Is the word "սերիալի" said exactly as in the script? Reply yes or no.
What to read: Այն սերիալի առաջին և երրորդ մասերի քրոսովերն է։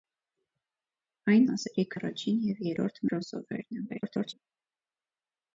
no